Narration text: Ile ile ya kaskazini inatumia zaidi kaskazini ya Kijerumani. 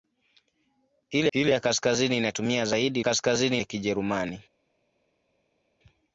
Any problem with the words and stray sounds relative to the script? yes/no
no